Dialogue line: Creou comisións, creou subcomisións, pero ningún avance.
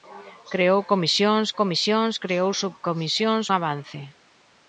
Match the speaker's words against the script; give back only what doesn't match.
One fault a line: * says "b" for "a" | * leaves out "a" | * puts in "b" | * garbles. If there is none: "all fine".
* puts in "comisións"
* leaves out "pero ningún"